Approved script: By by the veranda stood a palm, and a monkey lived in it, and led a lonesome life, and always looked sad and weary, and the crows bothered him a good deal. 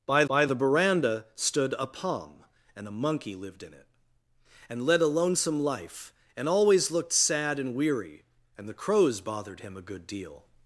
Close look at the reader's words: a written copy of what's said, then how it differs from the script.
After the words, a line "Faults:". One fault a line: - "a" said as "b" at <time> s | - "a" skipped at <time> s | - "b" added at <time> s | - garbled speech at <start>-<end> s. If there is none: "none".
By by the veranda stood a palm, and a monkey lived in it, and led a lonesome life, and always looked sad and weary, and the crows bothered him a good deal.
Faults:
none